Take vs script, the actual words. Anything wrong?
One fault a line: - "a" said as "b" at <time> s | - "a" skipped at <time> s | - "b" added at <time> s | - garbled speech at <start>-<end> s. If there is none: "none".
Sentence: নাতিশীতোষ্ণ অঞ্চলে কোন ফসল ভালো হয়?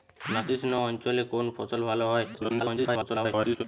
- garbled speech at 2.3-3.6 s